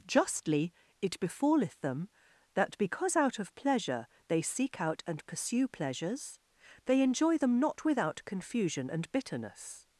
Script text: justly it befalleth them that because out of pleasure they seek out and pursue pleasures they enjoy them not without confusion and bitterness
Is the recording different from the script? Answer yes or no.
no